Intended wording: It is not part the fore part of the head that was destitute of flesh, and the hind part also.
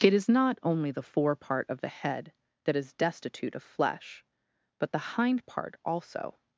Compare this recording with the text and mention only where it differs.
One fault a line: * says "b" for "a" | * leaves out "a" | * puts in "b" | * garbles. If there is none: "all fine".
* says "only" for "part"
* says "is" for "was"
* says "but" for "and"